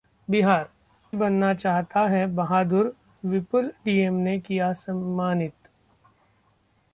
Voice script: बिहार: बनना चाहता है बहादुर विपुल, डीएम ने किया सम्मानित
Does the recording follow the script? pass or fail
pass